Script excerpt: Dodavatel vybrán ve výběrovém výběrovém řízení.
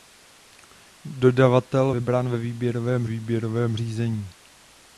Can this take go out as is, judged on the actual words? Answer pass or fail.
pass